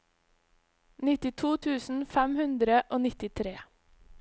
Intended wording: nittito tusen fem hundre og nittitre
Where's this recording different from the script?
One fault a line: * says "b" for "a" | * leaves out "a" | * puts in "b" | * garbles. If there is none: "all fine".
all fine